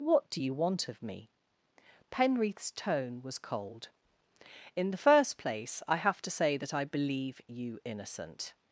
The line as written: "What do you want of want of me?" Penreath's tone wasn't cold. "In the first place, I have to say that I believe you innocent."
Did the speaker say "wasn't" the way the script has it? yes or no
no